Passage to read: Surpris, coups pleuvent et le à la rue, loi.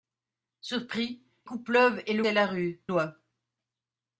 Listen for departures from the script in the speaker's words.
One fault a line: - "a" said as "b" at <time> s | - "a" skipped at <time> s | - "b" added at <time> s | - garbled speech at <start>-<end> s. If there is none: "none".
none